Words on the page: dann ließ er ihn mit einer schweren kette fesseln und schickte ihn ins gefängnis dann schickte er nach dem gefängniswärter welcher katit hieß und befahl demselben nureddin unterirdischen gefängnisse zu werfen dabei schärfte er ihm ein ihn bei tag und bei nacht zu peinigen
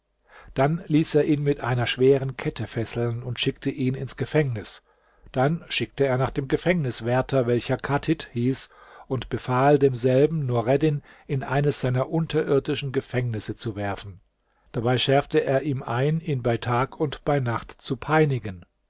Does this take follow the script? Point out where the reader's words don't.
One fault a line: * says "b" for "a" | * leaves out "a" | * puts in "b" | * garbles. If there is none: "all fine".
* puts in "in eines seiner"